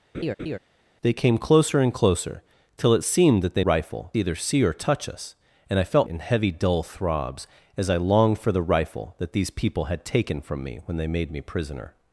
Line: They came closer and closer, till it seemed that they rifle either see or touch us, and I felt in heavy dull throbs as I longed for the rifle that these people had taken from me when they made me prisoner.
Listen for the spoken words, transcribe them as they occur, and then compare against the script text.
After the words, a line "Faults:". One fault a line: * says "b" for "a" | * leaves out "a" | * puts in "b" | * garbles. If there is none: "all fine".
They came closer and closer, till it seemed that they rifle either see or touch us, and I felt in heavy dull throbs as I longed for the rifle that these people had taken from me when they made me prisoner.
Faults:
all fine